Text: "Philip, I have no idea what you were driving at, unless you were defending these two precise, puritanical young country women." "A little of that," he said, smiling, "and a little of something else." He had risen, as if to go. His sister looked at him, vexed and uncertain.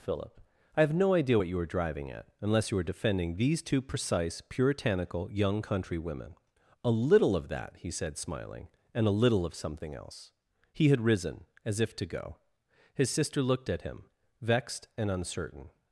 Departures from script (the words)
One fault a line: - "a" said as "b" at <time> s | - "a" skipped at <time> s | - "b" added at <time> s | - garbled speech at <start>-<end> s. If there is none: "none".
none